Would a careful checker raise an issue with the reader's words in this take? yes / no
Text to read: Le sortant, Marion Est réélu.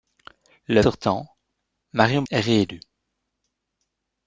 no